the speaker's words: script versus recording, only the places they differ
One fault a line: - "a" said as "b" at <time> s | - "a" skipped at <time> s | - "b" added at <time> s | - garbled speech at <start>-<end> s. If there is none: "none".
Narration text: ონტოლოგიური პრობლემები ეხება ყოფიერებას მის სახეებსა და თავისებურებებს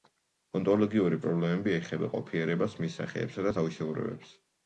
none